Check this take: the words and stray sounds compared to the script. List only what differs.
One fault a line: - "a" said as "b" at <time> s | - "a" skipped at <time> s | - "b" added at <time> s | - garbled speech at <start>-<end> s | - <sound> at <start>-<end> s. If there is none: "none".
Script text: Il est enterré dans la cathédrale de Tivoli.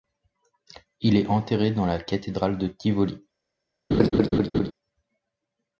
- laugh at 3.9-4.7 s